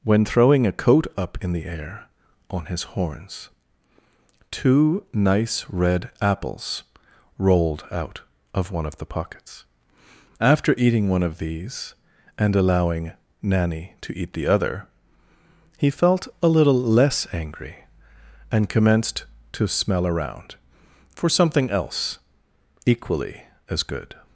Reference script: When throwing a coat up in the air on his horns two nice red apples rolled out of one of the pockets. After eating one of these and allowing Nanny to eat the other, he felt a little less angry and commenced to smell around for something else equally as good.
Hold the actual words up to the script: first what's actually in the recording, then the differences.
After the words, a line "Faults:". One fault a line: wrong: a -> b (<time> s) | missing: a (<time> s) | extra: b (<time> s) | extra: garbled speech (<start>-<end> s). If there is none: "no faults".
When throwing a coat up in the air on his horns two nice red apples rolled out of one of the pockets. After eating one of these and allowing Nanny to eat the other, he felt a little less angry and commenced to smell around for something else equally as good.
Faults:
no faults